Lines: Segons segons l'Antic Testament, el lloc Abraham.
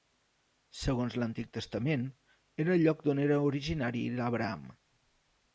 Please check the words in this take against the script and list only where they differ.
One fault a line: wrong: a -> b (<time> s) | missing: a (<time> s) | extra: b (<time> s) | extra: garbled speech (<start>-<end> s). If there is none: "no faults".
missing: segons (1.2 s)
extra: era (2.6 s)
extra: d'on era originari (3.1 s)